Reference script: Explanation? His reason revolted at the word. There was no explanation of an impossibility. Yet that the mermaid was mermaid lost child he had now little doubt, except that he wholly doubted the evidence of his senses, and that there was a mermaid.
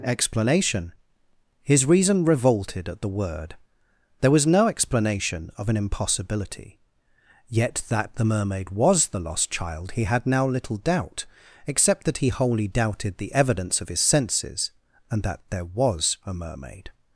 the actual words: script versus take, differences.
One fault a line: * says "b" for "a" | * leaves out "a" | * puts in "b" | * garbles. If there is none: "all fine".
* says "the" for "mermaid"